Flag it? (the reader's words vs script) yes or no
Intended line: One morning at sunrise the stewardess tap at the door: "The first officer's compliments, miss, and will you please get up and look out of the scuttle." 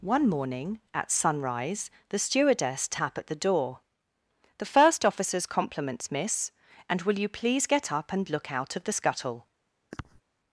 no